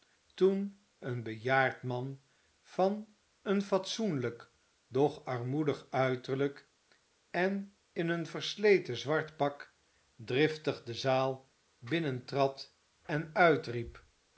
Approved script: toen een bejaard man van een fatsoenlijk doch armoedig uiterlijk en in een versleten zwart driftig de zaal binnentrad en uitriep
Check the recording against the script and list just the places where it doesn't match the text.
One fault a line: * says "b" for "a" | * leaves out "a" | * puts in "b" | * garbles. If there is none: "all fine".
* puts in "pak"